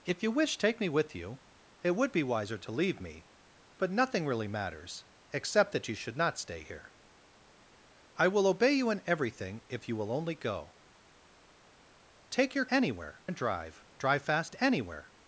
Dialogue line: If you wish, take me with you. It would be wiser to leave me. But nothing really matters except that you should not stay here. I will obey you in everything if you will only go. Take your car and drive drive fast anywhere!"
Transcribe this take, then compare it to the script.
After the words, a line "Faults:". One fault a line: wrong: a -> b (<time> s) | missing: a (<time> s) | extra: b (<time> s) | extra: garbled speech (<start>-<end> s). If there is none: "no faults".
If you wish, take me with you. It would be wiser to leave me. But nothing really matters except that you should not stay here. I will obey you in everything if you will only go. Take your anywhere and drive drive fast anywhere!"
Faults:
wrong: car -> anywhere (12.7 s)